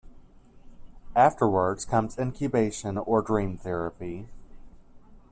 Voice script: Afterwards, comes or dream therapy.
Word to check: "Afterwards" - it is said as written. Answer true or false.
true